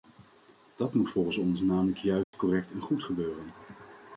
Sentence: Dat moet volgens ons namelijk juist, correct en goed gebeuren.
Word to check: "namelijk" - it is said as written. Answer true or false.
true